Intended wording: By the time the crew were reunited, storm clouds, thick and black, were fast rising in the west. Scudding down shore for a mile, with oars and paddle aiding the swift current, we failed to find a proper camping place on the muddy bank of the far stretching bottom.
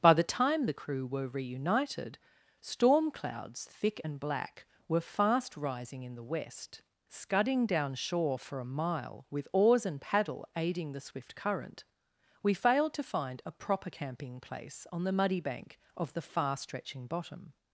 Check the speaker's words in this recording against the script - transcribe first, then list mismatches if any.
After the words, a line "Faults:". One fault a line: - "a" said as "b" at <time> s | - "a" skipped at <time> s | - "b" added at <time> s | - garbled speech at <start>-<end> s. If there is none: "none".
By the time the crew were reunited, storm clouds, thick and black, were fast rising in the west. Scudding down shore for a mile, with oars and paddle aiding the swift current, we failed to find a proper camping place on the muddy bank of the far stretching bottom.
Faults:
none